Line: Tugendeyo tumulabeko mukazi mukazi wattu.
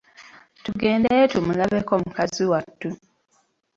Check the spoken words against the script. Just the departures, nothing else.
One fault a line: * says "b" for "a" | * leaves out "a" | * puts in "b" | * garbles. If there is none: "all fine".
* leaves out "mukazi"